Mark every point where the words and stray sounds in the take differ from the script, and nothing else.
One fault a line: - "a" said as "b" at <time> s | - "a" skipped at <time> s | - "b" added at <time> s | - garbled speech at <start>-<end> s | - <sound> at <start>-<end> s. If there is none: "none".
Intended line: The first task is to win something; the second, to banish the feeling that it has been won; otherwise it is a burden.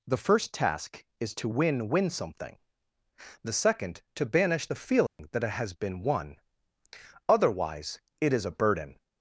- "win" added at 1.9 s
- dropout at 5.1-5.2 s